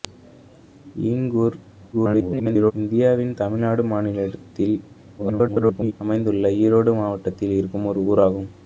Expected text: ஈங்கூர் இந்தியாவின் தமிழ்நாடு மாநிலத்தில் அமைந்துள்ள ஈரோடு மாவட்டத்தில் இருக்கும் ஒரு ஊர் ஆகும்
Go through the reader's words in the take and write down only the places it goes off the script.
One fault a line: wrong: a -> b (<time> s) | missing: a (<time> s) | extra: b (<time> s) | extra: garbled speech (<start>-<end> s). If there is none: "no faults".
extra: garbled speech (1.9-2.7 s)
extra: garbled speech (5.2-5.9 s)